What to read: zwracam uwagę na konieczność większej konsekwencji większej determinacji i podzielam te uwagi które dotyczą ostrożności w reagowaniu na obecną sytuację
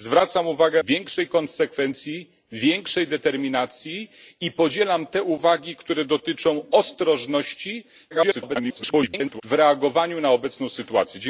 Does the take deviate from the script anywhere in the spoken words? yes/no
yes